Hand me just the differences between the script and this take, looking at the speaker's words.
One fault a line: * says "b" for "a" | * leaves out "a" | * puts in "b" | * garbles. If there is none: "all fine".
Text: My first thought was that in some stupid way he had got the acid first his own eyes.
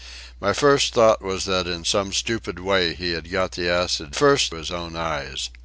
all fine